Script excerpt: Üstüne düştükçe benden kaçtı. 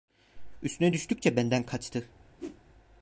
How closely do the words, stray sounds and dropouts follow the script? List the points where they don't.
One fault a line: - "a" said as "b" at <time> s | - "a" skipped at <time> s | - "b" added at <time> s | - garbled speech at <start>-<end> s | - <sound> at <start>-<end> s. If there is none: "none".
- whoosh at 2.4-2.6 s